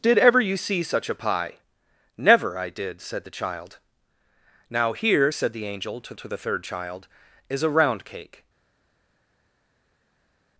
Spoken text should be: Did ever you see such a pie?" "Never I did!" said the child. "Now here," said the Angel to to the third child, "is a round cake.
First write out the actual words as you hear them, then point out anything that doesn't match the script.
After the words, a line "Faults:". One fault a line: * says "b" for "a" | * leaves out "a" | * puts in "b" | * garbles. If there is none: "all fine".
Did ever you see such a pie?" "Never I did!" said the child. "Now here," said the Angel to to the third child, "is a round cake.
Faults:
all fine